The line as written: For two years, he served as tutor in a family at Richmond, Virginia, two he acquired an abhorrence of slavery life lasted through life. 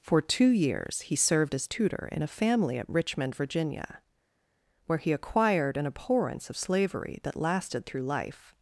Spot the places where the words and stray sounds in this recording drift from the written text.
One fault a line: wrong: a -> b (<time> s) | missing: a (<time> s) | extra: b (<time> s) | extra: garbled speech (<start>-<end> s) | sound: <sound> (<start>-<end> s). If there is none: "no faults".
wrong: two -> where (4.8 s)
wrong: life -> that (7.2 s)